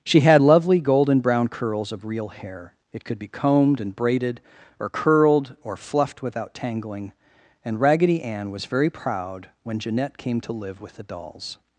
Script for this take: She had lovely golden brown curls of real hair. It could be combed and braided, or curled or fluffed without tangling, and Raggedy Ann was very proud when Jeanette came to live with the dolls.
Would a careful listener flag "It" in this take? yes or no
no